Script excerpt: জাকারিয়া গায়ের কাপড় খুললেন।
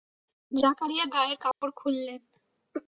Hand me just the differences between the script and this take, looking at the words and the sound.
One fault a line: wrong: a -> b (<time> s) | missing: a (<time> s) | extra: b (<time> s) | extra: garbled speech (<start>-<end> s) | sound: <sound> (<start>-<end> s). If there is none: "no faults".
sound: dropout (1.5-1.6 s)